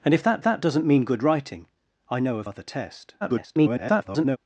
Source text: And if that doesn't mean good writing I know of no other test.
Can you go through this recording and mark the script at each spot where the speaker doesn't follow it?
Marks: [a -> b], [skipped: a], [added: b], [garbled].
And if that [added: that] doesn't mean good writing I know of [skipped: no] other test. [garbled]